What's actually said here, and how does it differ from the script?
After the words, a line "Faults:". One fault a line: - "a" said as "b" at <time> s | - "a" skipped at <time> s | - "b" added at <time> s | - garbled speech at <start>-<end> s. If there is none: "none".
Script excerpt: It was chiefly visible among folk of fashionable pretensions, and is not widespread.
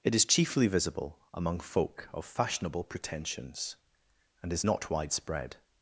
It is chiefly visible among folk of fashionable pretensions, and is not widespread.
Faults:
- "was" said as "is" at 0.1 s